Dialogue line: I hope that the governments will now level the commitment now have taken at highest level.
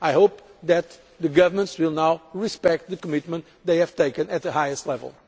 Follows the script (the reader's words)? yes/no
no